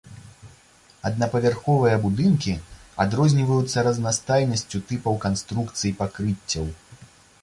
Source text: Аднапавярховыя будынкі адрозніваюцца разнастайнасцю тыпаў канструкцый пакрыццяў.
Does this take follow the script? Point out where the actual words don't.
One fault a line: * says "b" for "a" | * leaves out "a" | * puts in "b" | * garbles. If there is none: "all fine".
all fine